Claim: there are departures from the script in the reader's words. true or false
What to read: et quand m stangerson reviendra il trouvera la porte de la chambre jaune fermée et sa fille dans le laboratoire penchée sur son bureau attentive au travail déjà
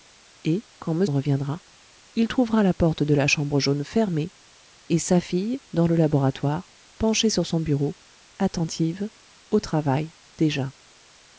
true